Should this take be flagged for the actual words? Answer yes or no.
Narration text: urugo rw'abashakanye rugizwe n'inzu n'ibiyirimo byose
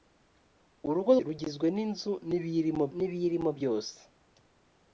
yes